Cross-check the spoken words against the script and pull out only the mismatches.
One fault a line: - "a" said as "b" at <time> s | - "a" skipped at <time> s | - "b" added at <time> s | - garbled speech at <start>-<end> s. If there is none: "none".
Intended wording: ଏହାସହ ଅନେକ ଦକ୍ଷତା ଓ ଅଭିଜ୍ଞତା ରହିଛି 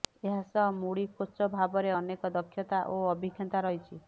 - "ମୁଡି କୋଚ ଭାବରେ" added at 0.8 s